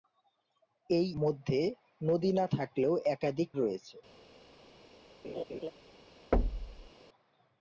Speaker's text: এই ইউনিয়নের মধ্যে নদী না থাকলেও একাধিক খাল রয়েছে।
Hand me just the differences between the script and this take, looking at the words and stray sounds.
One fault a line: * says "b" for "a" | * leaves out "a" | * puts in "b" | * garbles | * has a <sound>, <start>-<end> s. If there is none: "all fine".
* leaves out "ইউনিয়নের"
* leaves out "খাল"
* has a laugh, 5.2-5.7 s
* has a thud, 6.3-6.9 s